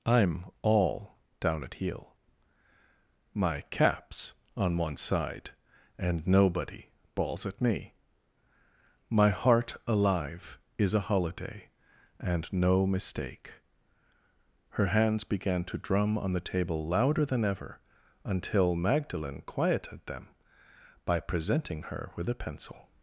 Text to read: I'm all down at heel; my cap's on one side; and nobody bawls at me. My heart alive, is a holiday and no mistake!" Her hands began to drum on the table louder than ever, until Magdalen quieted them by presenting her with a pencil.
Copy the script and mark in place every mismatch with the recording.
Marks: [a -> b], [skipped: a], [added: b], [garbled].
I'm all down at heel; my cap's on one side; and nobody bawls at me. My heart alive, is a holiday and no mistake!" Her hands began to drum on the table louder than ever, until Magdalen quieted them by presenting her with a pencil.